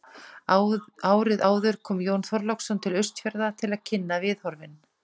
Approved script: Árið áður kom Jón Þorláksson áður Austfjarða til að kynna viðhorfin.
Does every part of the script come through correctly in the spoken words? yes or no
no